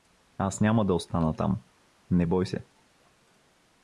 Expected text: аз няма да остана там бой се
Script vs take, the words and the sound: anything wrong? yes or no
yes